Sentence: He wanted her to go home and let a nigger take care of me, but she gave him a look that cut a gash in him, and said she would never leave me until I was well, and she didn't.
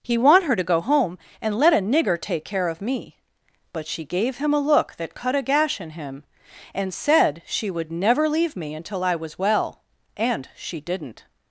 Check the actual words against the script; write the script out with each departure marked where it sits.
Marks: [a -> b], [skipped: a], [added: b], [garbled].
He [wanted -> want] her to go home and let a nigger take care of me, but she gave him a look that cut a gash in him, and said she would never leave me until I was well, and she didn't.